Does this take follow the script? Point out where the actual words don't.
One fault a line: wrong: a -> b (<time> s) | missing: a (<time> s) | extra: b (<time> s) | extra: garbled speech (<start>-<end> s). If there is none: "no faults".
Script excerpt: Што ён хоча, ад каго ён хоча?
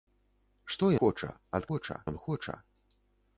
missing: ён (0.9 s)
wrong: каго -> хоча (1.7 s)